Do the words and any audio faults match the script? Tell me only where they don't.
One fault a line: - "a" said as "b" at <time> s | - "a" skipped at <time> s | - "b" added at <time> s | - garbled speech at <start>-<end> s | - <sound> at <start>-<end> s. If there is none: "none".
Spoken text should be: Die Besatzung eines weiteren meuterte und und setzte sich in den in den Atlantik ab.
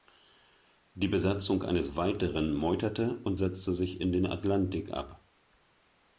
- "und" skipped at 3.4 s
- "in den" skipped at 4.3 s